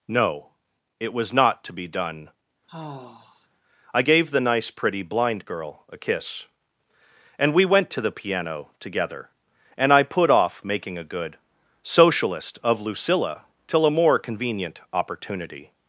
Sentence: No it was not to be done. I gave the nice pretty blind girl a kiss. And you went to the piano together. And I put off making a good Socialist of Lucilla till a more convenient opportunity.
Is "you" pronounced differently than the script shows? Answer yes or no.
yes